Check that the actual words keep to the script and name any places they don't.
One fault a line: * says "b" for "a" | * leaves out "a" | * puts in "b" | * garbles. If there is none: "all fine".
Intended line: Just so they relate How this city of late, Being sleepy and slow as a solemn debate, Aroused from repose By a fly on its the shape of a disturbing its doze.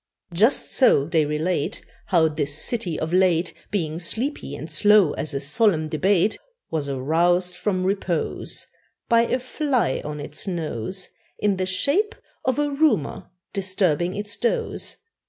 * puts in "Was"
* puts in "nose In"
* puts in "rumour"